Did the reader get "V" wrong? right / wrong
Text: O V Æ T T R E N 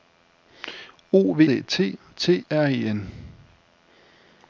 right